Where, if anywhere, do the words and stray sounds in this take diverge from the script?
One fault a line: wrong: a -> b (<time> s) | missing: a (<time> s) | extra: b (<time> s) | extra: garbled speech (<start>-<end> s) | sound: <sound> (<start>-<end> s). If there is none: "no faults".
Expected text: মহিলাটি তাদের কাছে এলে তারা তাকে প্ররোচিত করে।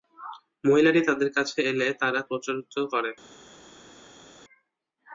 missing: তাকে (2.2 s)